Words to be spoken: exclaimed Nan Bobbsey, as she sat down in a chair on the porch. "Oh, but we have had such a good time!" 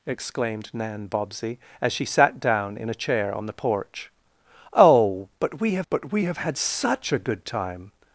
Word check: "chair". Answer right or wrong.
right